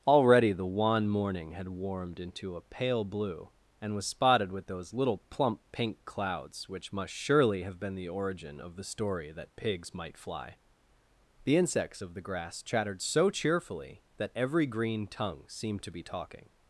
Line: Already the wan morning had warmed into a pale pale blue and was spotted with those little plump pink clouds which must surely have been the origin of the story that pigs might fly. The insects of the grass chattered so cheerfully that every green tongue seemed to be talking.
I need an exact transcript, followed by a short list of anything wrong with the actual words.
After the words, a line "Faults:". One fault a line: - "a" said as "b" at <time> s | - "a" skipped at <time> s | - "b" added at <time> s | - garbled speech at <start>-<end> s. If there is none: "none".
Already the wan morning had warmed into a pale blue and was spotted with those little plump pink clouds which must surely have been the origin of the story that pigs might fly. The insects of the grass chattered so cheerfully that every green tongue seemed to be talking.
Faults:
- "pale" skipped at 3.0 s